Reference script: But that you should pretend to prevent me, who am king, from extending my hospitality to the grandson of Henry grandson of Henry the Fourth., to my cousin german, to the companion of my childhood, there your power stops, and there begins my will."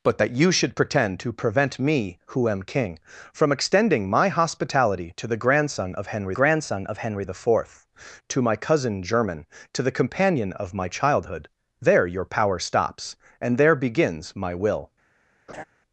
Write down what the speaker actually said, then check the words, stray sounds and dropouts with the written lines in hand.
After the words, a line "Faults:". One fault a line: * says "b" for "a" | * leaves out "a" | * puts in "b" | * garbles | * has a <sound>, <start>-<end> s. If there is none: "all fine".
But that you should pretend to prevent me, who am king, from extending my hospitality to the grandson of Henry grandson of Henry the Fourth., to my cousin german, to the companion of my childhood, there your power stops, and there begins my will."
Faults:
* has a laugh, 15.5-15.6 s